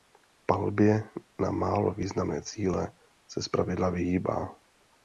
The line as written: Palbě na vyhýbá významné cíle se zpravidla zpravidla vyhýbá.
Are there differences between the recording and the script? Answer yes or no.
yes